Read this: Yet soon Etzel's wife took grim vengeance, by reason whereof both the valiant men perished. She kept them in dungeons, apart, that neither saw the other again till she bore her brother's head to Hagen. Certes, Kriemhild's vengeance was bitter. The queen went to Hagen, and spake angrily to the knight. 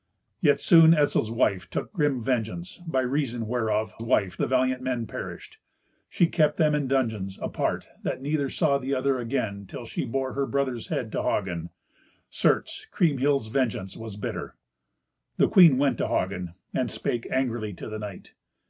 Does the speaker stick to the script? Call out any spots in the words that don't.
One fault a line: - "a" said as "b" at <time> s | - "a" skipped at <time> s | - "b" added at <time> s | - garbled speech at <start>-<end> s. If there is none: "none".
- "both" said as "wife" at 4.0 s